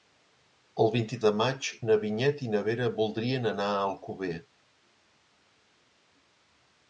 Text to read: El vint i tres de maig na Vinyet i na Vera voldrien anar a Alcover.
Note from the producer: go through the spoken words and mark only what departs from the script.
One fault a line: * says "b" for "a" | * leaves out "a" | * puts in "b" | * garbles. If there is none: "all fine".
* leaves out "tres"